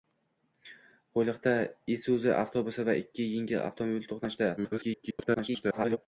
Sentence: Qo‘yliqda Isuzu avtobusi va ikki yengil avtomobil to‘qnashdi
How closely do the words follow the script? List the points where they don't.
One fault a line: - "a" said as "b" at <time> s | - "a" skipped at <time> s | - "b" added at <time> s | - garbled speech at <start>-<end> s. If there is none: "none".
- garbled speech at 4.6-6.0 s